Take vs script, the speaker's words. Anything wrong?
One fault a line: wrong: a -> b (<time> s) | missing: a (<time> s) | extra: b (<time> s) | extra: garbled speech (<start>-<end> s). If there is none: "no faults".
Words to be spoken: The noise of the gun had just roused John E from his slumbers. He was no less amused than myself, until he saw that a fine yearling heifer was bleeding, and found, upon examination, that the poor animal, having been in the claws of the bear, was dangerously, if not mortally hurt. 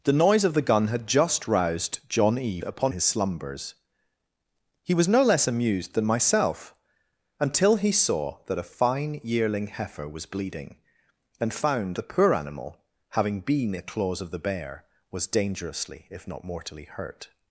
wrong: from -> upon (2.6 s)
missing: upon examination that (12.0 s)
missing: in (13.8 s)